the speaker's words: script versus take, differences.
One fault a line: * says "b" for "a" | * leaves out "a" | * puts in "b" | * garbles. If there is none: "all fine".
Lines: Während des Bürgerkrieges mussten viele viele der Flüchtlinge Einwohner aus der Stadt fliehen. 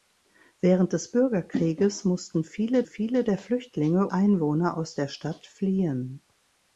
all fine